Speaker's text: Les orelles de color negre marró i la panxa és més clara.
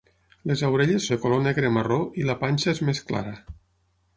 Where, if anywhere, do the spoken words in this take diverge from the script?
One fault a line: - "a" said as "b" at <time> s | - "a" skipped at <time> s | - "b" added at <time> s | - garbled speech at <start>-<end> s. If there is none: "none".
none